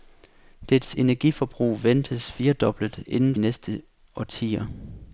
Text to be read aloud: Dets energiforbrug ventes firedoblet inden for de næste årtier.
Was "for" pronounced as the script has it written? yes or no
no